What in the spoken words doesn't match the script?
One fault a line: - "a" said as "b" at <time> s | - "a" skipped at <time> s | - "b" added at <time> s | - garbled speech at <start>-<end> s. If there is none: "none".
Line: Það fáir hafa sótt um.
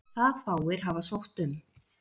none